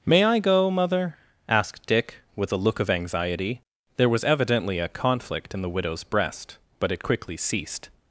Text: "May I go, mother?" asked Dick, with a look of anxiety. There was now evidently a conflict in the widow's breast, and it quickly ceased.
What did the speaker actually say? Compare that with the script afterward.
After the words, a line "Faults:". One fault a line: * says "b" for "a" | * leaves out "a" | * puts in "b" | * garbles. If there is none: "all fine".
"May I go, mother?" asked Dick, with a look of anxiety. There was evidently a conflict in the widow's breast, but it quickly ceased.
Faults:
* leaves out "now"
* says "but" for "and"